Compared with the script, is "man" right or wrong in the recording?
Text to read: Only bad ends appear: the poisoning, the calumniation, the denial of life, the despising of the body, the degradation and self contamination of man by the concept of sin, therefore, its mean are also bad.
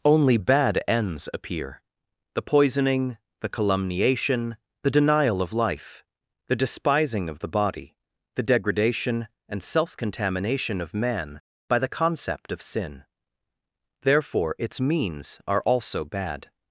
right